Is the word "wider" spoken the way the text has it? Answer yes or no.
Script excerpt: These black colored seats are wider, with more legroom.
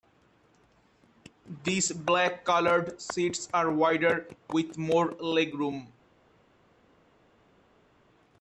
yes